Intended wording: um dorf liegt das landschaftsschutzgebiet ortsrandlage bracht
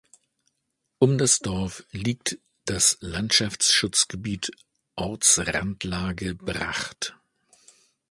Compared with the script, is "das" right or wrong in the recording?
right